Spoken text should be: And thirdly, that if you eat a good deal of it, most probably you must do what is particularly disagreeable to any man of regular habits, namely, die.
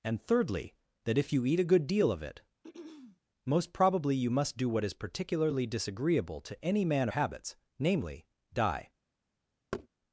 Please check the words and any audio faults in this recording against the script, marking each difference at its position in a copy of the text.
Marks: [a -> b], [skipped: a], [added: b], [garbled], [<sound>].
And thirdly, that if you eat a good deal of it, [throat clearing] most probably you must do what is particularly disagreeable to any man [skipped: of regular] habits, namely, die. [thud]